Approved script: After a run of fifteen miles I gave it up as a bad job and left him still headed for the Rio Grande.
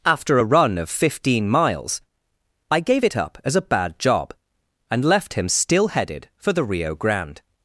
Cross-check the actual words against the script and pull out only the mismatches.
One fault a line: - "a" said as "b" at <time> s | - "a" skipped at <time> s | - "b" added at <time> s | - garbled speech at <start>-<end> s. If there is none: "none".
none